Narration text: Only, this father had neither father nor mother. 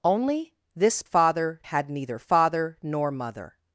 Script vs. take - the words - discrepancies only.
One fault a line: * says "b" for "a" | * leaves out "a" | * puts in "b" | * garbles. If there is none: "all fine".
all fine